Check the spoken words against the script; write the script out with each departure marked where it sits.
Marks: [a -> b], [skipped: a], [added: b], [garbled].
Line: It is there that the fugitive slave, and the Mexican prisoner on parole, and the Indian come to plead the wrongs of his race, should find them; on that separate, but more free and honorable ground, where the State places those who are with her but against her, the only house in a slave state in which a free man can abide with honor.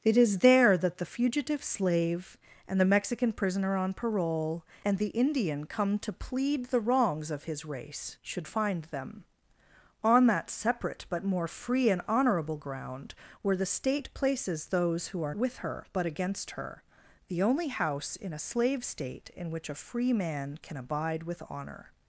It is there that the fugitive slave, and the Mexican prisoner on parole, and the Indian come to plead the wrongs of his race, should find them; on that separate, but more free and honorable ground, where the State places those who are with her but against her, the only house in a slave state in which a free man can abide with honor.